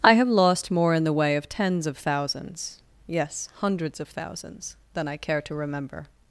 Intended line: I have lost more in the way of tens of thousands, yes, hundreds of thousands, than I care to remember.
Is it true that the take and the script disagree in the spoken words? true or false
false